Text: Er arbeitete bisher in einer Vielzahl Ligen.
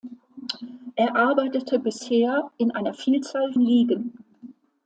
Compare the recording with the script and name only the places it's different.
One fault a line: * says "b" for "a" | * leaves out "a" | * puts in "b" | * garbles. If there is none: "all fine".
all fine